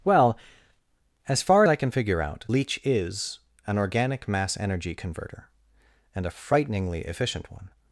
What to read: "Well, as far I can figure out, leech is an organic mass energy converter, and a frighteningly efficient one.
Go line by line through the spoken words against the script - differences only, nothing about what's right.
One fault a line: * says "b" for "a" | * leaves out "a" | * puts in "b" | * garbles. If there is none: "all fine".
all fine